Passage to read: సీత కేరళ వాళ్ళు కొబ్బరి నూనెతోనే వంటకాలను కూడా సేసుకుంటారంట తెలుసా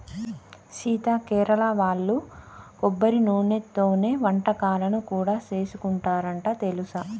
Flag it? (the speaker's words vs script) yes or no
no